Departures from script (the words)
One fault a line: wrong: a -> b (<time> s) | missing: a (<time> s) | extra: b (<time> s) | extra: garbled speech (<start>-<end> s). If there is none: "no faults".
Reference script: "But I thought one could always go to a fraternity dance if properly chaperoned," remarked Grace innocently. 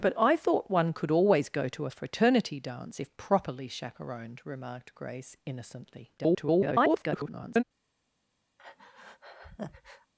extra: garbled speech (6.2-7.6 s)